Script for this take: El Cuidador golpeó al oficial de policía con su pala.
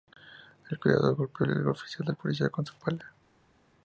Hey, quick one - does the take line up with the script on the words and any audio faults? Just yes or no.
yes